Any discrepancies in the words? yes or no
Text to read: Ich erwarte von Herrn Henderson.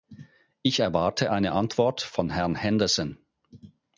yes